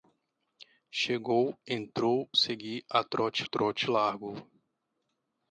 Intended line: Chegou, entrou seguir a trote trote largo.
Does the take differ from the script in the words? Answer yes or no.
no